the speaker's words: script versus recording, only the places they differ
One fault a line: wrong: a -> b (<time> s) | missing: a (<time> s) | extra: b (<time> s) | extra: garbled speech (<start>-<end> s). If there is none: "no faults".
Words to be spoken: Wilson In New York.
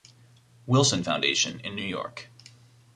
extra: Foundation (1.0 s)